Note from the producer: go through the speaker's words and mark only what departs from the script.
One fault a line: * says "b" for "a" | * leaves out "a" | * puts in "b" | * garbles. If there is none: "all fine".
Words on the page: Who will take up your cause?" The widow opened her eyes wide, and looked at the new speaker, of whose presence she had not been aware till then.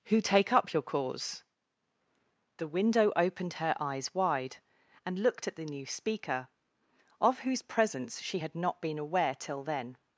* leaves out "will"
* says "window" for "widow"